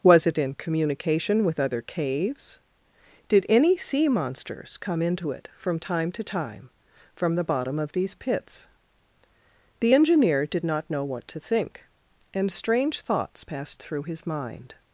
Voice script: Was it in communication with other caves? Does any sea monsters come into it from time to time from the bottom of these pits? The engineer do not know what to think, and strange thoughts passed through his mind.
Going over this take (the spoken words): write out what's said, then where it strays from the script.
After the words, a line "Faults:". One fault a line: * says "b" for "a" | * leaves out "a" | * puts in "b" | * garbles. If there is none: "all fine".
Was it in communication with other caves? Did any sea monsters come into it from time to time from the bottom of these pits? The engineer did not know what to think, and strange thoughts passed through his mind.
Faults:
* says "Did" for "Does"
* says "did" for "do"